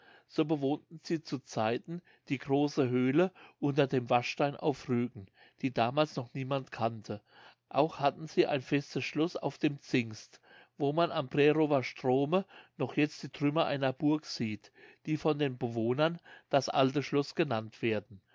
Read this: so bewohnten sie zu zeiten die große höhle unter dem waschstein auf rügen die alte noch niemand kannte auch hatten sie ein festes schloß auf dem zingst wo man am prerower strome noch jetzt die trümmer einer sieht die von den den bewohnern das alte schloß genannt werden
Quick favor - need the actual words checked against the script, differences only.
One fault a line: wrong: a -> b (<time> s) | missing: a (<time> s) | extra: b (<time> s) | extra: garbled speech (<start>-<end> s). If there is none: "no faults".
wrong: alte -> damals (5.7 s)
extra: burg (13.9 s)
missing: den (15.6 s)